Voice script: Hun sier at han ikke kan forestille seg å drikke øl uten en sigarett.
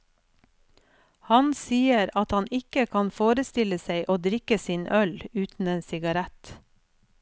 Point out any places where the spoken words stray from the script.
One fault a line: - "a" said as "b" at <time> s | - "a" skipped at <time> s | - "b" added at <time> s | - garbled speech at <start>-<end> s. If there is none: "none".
- "Hun" said as "Han" at 1.3 s
- "sin" added at 4.7 s